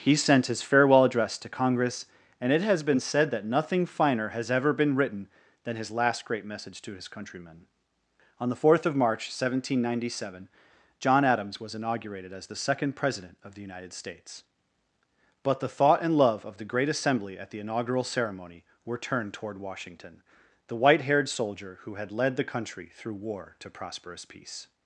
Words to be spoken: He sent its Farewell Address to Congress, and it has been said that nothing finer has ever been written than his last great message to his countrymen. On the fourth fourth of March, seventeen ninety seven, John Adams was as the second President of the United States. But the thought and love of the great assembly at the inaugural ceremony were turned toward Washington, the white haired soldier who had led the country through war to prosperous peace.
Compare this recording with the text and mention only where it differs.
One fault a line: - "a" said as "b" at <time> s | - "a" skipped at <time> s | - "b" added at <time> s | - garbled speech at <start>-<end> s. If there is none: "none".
- "its" said as "his" at 0.5 s
- "fourth" skipped at 8.9 s
- "inaugurated" added at 11.8 s